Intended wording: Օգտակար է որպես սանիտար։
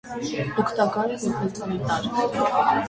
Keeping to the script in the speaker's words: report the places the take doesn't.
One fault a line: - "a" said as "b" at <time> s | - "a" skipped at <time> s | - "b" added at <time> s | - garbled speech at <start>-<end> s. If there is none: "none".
none